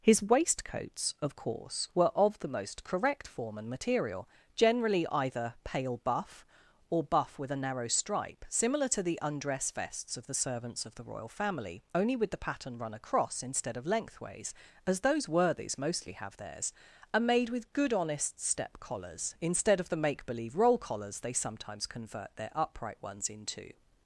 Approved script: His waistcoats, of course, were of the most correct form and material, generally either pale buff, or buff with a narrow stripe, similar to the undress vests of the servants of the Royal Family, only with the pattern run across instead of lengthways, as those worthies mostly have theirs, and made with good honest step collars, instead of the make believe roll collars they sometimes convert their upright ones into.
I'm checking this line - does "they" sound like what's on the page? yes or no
yes